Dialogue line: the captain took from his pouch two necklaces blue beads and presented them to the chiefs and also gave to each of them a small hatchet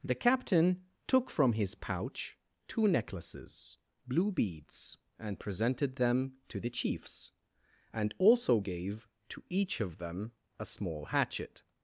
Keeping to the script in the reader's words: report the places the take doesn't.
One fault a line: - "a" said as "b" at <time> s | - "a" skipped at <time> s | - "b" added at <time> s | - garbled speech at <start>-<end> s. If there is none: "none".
none